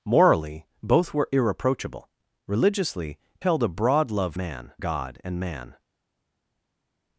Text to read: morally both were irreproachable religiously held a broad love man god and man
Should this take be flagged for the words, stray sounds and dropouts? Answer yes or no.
no